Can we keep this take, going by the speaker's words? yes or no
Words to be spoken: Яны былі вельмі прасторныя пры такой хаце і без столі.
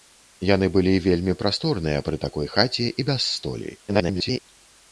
no